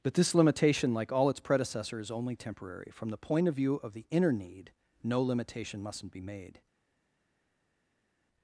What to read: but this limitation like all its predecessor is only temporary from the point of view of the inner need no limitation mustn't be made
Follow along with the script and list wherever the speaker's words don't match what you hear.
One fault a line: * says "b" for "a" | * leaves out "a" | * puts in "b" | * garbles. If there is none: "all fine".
all fine